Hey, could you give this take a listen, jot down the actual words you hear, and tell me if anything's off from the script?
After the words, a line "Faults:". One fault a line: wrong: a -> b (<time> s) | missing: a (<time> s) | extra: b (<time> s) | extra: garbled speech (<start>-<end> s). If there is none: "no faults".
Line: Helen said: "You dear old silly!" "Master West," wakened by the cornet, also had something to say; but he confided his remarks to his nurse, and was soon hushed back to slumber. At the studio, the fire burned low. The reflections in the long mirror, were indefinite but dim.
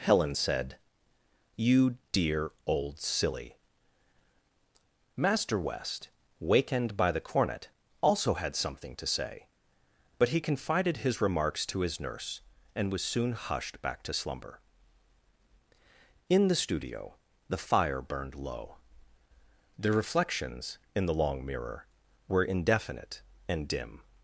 Helen said: "You dear old silly!" "Master West," wakened by the cornet, also had something to say; but he confided his remarks to his nurse, and was soon hushed back to slumber. In the studio, the fire burned low. The reflections in the long mirror, were indefinite and dim.
Faults:
wrong: At -> In (16.3 s)
wrong: but -> and (23.5 s)